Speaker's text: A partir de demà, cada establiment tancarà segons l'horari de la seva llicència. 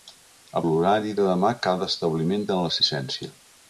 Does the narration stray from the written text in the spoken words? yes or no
yes